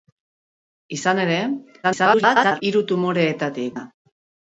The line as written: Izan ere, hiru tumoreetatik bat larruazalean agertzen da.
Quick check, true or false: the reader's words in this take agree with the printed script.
false